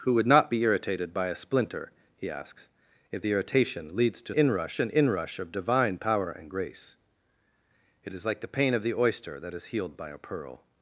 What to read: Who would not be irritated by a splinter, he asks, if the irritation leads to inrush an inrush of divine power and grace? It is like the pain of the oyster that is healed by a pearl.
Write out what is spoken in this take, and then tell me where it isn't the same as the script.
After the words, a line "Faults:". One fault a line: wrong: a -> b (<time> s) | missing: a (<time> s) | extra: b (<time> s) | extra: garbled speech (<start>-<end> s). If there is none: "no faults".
Who would not be irritated by a splinter, he asks, if the irritation leads to inrush an inrush of divine power and grace? It is like the pain of the oyster that is healed by a pearl.
Faults:
no faults